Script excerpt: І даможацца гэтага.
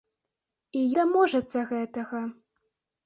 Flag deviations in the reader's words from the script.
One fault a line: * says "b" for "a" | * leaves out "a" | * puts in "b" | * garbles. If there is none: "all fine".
all fine